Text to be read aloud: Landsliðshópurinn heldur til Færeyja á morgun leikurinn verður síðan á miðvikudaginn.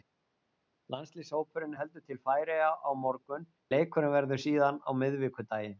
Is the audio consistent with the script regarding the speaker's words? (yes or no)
yes